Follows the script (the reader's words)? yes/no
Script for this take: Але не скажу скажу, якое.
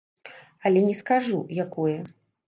no